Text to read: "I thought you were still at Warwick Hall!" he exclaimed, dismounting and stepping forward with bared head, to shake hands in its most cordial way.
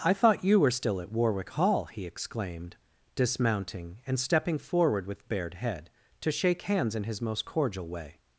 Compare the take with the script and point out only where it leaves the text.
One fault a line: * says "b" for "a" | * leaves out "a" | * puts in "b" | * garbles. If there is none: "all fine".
* says "his" for "its"